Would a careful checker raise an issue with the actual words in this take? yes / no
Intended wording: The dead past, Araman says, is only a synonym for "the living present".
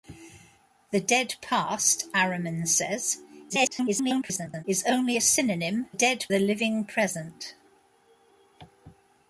yes